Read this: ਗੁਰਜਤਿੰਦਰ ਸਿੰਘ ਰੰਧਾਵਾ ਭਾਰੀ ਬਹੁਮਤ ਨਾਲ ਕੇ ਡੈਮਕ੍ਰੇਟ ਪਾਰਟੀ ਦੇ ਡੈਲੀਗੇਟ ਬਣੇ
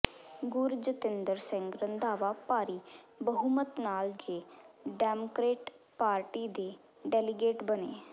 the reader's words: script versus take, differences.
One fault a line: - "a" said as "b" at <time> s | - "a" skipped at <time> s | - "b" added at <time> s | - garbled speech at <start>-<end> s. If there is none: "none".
none